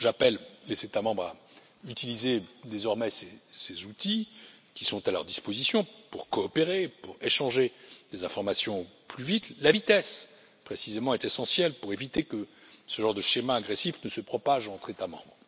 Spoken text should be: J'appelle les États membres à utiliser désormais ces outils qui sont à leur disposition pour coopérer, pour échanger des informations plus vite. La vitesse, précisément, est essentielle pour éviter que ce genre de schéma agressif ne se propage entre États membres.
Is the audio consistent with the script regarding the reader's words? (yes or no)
yes